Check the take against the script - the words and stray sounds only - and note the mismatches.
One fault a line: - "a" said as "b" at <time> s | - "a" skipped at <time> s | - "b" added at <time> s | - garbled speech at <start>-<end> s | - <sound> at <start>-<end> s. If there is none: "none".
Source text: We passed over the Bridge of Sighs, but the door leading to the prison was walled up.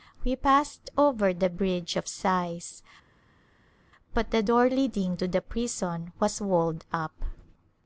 none